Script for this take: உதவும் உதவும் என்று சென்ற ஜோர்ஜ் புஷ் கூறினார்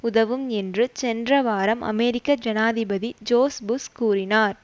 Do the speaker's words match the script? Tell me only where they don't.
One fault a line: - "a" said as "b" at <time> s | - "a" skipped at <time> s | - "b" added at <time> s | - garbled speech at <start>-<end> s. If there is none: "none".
- "உதவும்" skipped at 0.5 s
- "வாரம் அமெரிக்க ஜனாதிபதி" added at 1.4 s